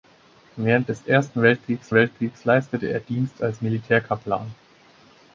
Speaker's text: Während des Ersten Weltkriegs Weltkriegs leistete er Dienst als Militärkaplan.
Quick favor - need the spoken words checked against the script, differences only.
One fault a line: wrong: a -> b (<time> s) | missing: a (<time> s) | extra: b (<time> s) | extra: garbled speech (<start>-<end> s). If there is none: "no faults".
no faults